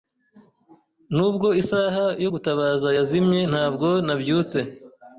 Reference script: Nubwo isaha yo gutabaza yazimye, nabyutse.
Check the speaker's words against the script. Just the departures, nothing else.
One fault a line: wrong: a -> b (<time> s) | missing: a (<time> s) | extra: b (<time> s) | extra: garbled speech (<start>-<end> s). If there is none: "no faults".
extra: ntabwo (3.5 s)